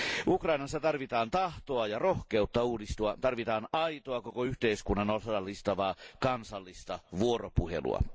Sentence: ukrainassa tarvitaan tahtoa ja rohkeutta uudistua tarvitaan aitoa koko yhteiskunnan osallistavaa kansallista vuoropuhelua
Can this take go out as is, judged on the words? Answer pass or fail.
pass